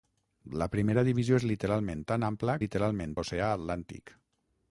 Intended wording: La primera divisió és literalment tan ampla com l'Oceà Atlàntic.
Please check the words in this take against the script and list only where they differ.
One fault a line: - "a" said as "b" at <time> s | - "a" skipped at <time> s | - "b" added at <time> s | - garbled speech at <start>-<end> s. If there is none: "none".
- "com" said as "literalment" at 2.6 s